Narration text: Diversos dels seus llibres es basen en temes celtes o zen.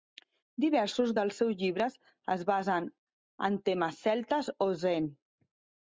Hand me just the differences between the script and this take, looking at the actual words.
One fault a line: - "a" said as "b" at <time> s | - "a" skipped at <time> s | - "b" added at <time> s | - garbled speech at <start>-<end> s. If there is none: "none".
none